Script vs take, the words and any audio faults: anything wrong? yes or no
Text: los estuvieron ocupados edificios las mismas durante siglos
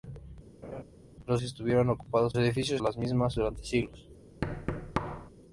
yes